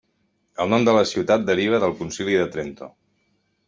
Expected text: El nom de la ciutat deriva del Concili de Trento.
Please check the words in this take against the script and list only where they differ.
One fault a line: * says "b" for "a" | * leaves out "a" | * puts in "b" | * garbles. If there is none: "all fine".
all fine